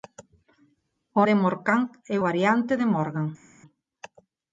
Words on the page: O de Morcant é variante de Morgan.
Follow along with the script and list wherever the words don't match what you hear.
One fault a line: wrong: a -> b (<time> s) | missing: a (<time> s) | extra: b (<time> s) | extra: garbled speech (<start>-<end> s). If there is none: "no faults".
no faults